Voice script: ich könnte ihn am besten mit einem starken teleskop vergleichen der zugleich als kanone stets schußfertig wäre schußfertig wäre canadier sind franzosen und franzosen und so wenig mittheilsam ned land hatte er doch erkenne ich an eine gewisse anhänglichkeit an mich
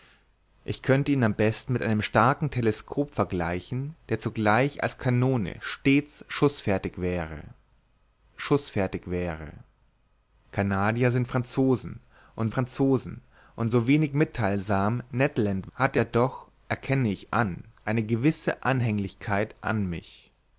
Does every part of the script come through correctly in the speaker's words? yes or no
yes